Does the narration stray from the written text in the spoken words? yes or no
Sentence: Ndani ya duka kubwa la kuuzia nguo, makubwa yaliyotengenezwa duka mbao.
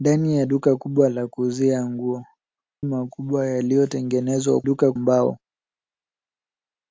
no